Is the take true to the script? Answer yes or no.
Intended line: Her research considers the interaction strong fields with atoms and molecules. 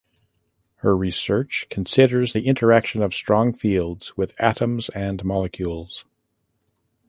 no